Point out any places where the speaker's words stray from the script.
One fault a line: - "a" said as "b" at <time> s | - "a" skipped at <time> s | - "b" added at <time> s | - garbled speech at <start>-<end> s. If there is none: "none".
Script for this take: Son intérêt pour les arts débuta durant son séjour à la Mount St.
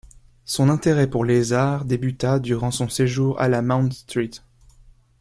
none